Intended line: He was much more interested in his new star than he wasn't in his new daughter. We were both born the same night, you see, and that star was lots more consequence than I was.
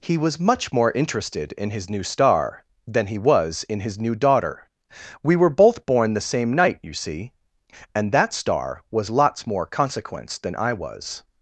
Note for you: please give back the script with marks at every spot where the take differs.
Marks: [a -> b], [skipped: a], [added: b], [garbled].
He was much more interested in his new star than he [wasn't -> was] in his new daughter. We were both born the same night, you see, and that star was lots more consequence than I was.